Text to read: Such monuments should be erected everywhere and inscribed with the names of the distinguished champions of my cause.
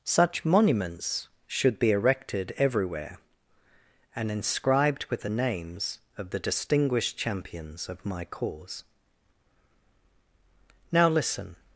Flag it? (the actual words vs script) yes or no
yes